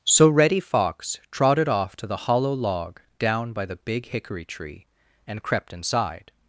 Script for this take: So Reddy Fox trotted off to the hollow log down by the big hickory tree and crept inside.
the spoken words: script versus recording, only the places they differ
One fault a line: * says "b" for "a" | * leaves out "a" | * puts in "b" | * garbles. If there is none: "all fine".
all fine